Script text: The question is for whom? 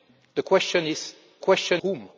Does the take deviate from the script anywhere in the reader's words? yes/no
yes